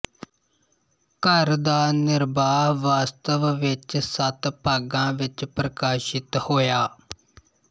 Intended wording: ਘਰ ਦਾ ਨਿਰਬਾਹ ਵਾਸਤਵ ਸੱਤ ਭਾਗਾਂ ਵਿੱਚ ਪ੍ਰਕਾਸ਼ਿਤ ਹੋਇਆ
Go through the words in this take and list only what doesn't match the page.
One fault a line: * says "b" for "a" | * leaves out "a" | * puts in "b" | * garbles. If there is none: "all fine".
* puts in "ਵਿੱਚ"